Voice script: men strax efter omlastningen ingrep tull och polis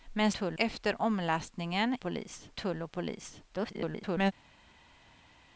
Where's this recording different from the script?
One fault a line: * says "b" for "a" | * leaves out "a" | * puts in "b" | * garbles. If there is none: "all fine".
* says "tull" for "strax"
* says "polis" for "ingrep"
* garbles